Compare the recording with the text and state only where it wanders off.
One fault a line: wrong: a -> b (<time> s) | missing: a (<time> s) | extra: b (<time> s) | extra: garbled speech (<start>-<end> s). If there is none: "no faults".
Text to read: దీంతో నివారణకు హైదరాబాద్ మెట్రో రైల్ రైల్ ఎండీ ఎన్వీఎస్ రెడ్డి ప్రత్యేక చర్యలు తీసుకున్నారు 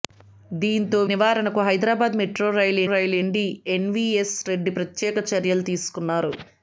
no faults